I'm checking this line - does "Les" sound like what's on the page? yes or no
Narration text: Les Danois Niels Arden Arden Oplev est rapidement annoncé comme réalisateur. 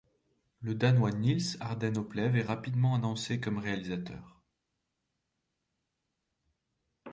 no